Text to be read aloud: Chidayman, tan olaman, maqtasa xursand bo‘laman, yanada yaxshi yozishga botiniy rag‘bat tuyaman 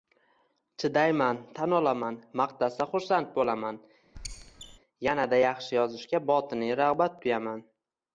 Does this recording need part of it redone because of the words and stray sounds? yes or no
yes